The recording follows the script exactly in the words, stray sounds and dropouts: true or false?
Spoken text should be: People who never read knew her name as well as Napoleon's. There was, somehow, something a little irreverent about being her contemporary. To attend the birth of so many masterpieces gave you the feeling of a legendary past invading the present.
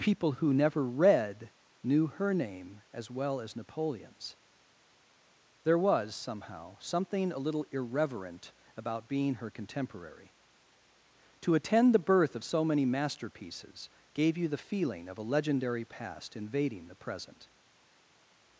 true